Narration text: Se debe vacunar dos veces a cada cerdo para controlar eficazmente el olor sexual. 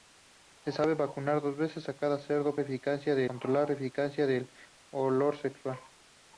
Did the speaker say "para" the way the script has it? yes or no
no